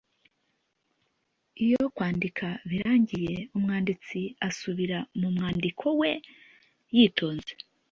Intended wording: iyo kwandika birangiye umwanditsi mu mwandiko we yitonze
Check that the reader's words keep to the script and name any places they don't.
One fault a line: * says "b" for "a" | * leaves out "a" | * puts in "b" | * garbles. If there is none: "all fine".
* puts in "asubira"